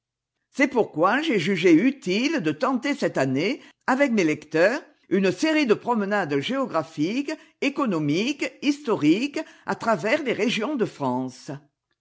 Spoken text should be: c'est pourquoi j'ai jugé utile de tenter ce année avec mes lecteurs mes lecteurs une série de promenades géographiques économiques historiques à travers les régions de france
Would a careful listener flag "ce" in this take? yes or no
yes